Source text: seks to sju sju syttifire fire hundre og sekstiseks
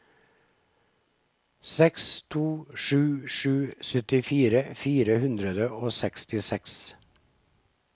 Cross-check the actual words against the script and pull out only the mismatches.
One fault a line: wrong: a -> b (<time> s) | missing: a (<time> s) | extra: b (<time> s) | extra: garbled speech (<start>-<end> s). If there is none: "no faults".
no faults